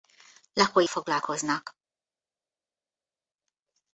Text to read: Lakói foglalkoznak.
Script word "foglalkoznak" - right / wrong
right